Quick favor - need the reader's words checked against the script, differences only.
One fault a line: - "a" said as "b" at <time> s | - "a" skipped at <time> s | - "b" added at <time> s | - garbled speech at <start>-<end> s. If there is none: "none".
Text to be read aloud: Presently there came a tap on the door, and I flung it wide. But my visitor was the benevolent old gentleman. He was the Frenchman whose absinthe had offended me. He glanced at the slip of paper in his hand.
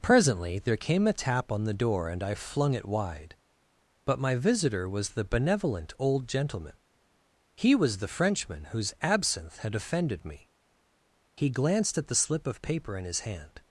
none